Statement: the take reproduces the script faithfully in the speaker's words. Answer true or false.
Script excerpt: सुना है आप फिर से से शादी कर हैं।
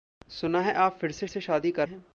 true